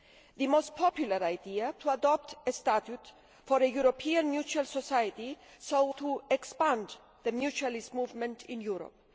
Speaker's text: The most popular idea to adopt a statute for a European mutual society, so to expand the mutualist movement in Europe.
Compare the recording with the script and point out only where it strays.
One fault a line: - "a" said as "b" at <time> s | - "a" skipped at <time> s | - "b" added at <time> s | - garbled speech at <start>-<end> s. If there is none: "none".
none